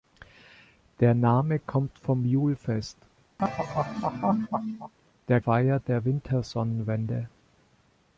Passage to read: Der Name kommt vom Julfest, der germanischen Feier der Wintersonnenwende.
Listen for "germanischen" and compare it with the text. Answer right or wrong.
wrong